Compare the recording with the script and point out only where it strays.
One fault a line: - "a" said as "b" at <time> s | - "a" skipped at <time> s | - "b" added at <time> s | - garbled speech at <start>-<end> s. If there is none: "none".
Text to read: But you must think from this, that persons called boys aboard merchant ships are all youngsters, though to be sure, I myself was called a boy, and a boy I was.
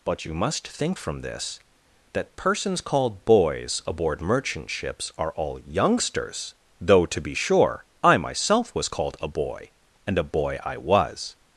none